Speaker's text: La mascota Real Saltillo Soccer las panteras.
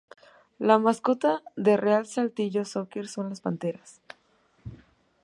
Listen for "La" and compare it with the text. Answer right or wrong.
right